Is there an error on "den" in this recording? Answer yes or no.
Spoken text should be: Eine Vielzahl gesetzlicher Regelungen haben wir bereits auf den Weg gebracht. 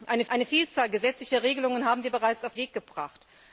yes